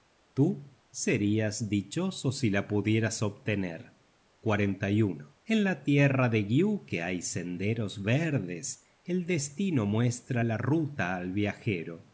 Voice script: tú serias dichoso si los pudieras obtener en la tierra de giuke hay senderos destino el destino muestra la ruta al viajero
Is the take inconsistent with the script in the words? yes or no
yes